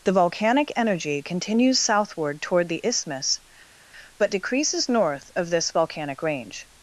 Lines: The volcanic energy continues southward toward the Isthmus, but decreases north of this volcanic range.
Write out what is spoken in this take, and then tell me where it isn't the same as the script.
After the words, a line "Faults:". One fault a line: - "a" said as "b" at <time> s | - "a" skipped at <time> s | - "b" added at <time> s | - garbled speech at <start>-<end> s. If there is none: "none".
The volcanic energy continues southward toward the Isthmus, but decreases north of this volcanic range.
Faults:
none